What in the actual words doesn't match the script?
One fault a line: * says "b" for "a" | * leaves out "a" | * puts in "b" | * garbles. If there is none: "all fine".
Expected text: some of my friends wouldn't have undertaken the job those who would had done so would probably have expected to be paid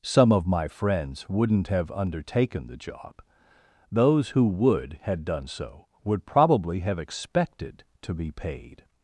all fine